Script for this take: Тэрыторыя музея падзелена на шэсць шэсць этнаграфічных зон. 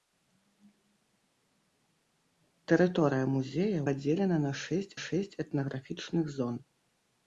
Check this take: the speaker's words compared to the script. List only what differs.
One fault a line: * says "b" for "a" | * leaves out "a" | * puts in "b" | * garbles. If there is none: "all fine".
all fine